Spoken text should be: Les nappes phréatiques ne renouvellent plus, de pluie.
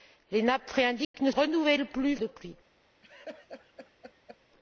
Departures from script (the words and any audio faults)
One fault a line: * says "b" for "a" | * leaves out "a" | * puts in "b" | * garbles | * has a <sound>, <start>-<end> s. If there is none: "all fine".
* has a dropout, 1.0-1.1 s
* has a laugh, 3.0-4.4 s